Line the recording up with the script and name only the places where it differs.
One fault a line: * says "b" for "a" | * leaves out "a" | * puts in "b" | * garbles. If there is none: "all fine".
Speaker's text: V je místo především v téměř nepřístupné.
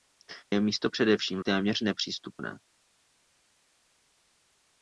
all fine